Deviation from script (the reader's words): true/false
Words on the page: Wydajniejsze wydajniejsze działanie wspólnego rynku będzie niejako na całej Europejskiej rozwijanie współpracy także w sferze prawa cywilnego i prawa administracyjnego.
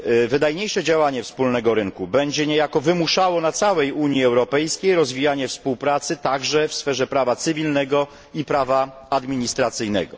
true